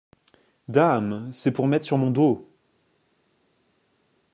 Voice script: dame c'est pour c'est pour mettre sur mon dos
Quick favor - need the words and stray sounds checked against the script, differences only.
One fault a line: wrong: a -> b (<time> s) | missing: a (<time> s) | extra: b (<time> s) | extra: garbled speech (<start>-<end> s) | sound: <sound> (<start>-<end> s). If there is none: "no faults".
missing: c'est pour (1.7 s)